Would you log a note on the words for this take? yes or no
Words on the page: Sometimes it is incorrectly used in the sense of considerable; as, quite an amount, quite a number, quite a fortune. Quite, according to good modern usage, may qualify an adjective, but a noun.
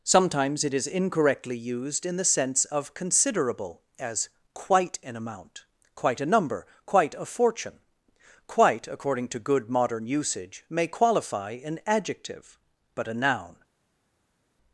no